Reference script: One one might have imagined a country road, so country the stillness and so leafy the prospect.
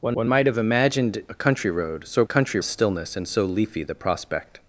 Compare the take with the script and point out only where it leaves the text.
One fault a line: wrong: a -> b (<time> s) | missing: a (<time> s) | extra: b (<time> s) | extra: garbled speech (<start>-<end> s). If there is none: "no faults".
no faults